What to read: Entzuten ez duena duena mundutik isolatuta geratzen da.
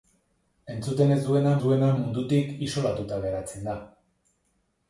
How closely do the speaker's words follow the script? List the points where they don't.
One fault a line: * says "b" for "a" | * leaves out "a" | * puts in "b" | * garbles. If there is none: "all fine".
all fine